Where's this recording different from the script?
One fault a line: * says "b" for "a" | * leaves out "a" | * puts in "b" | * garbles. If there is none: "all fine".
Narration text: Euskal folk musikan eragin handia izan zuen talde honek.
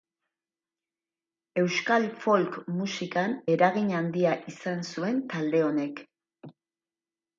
all fine